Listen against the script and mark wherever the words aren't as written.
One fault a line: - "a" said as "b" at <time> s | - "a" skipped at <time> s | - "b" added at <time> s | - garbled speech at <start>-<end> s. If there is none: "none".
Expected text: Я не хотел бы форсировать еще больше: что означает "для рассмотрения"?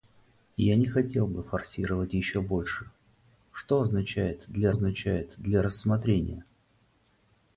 - "означает для" added at 4.7 s